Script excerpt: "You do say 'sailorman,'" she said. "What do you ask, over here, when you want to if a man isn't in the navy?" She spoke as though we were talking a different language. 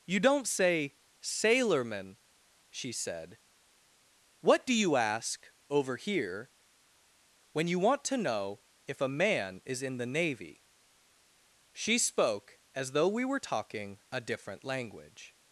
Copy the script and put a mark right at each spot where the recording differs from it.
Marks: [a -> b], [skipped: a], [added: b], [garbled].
"You [do -> don't] say 'sailorman,'" she said. "What do you ask, over here, when you want to [added: know] if a man [isn't -> is] in the navy?" She spoke as though we were talking a different language.